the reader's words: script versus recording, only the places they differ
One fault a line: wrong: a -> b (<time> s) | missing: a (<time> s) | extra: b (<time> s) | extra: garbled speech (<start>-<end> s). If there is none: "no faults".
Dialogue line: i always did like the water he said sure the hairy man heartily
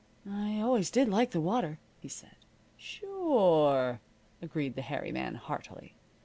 extra: agreed (4.4 s)